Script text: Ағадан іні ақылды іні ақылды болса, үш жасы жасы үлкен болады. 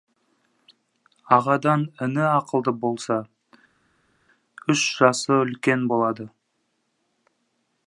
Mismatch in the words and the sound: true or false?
true